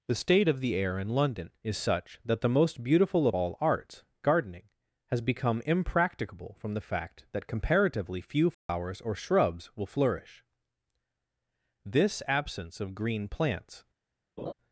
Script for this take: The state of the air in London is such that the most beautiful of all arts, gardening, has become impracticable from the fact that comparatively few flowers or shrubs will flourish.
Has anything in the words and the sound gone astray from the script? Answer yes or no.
yes